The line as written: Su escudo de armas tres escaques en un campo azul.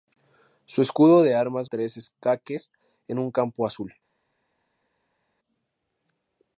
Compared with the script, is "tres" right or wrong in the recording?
right